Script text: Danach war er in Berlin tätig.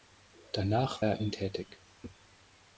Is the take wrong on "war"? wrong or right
wrong